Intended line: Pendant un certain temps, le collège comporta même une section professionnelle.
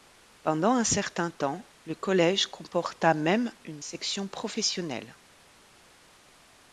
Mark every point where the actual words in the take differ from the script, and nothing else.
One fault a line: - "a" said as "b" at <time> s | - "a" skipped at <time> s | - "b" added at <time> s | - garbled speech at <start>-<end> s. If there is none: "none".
none